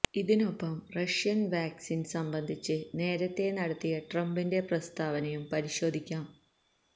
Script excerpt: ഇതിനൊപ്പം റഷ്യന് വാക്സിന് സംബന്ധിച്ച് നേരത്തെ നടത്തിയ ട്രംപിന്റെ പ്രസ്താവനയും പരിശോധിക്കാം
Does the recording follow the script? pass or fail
pass